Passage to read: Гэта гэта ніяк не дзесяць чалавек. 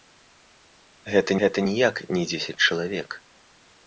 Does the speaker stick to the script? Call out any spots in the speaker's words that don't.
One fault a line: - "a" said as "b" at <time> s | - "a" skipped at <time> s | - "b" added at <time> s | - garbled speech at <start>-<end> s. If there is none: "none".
none